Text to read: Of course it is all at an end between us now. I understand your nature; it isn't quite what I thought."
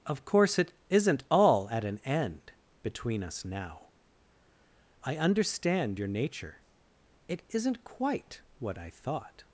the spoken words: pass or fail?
fail